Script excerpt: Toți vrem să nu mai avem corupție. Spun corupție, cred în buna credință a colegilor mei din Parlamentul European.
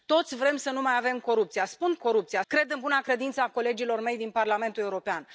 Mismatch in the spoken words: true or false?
false